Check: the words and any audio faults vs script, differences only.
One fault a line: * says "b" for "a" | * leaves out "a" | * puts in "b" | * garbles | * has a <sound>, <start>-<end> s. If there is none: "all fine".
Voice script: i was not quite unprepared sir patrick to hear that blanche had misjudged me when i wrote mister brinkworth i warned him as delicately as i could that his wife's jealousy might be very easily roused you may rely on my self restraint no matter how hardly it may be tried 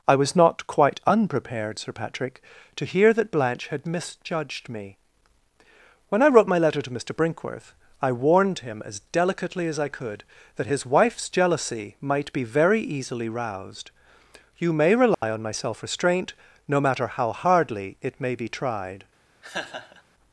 * puts in "my letter to"
* has a dropout, 15.1-15.2 s
* has a laugh, 19.4-20.0 s